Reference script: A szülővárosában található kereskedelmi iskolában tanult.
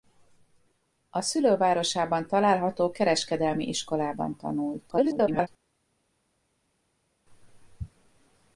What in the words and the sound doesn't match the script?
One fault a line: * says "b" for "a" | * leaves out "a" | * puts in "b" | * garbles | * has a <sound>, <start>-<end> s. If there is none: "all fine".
* garbles